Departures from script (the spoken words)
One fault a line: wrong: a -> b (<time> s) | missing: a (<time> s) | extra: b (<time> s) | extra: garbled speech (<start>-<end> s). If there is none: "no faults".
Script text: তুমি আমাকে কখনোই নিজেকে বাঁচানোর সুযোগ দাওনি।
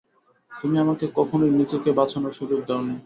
no faults